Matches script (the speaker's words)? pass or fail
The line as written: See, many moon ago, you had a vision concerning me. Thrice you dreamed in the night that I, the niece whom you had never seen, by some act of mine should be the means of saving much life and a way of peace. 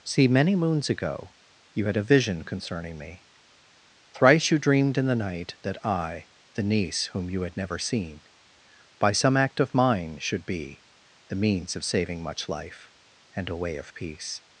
fail